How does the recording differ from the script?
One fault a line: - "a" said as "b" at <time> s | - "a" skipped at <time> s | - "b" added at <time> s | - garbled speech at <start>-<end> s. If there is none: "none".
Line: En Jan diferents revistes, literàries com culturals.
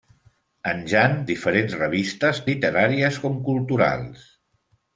none